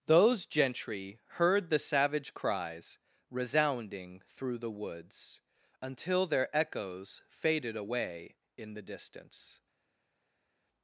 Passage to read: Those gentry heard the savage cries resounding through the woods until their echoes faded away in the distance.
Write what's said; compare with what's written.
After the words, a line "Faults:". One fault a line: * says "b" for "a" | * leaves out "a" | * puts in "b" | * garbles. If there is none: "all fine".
Those gentry heard the savage cries resounding through the woods until their echoes faded away in the distance.
Faults:
all fine